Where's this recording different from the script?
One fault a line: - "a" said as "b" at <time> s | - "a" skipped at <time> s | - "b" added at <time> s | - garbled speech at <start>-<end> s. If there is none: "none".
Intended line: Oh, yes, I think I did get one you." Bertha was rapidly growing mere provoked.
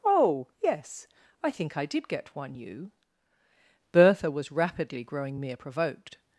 none